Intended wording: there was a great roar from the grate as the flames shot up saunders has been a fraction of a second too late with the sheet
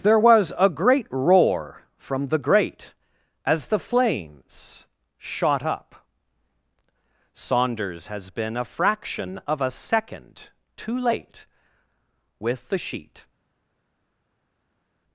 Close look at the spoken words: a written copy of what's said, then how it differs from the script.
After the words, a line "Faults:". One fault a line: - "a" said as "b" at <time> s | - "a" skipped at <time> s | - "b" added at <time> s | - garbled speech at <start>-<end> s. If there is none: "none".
there was a great roar from the grate as the flames shot up saunders has been a fraction of a second too late with the sheet
Faults:
none